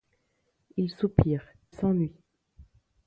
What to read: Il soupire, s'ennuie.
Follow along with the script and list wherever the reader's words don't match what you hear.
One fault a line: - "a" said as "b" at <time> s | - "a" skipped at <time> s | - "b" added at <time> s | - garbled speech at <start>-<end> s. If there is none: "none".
none